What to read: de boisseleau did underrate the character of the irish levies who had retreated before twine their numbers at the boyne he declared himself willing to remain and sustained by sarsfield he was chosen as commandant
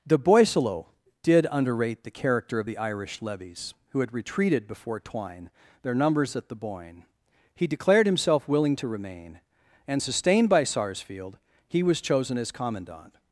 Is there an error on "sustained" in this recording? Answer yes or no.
no